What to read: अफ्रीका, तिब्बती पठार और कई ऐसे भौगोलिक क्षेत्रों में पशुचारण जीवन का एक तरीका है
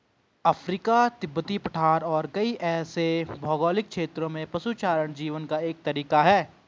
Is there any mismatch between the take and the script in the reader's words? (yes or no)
no